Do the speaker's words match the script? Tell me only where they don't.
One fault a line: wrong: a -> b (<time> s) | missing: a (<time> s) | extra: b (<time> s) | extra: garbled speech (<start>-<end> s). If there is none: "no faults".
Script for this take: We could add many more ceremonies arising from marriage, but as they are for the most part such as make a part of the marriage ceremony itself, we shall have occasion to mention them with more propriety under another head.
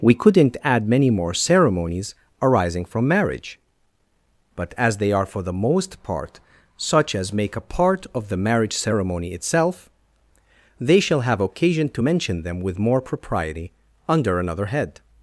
wrong: could -> couldn't (0.1 s)
wrong: we -> they (10.8 s)